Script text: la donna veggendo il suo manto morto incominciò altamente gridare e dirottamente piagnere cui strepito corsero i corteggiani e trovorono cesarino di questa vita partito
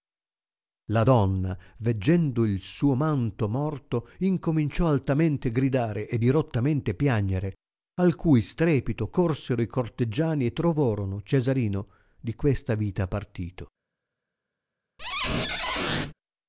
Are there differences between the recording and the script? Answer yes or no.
yes